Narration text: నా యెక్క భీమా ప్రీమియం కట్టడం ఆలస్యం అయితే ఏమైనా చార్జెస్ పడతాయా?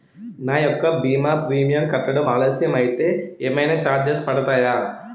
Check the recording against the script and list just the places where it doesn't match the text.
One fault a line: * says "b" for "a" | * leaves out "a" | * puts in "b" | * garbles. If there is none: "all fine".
all fine